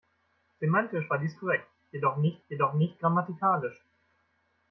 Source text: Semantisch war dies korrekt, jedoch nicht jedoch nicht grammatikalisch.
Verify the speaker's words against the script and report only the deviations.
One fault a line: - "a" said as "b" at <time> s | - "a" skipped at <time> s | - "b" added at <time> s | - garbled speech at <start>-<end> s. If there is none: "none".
none